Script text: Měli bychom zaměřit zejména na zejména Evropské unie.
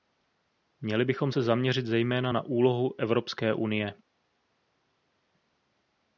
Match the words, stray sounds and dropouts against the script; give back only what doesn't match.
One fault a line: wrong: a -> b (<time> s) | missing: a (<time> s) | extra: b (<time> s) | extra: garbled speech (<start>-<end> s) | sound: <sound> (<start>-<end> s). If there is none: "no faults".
extra: se (1.3 s)
wrong: zejména -> úlohu (2.4 s)